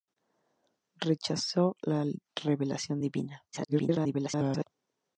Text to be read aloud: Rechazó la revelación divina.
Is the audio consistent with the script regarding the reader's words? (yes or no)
no